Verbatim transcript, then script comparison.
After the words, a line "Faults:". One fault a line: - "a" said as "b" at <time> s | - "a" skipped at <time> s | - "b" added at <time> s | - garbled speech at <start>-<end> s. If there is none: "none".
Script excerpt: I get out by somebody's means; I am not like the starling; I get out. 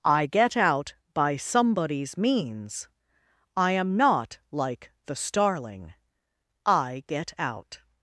I get out by somebody's means; I am not like the starling; I get out.
Faults:
none